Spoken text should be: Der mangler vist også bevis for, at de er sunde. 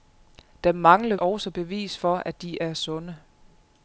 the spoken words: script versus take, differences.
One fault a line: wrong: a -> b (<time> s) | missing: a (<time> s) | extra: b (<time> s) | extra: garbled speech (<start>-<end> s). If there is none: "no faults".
missing: vist (1.1 s)